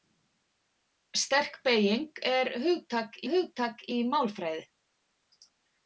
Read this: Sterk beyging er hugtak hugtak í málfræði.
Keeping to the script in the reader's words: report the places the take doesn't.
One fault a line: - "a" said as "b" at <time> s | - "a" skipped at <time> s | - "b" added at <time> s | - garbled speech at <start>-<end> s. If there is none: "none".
none